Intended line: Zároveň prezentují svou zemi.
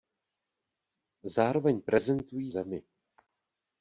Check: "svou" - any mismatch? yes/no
yes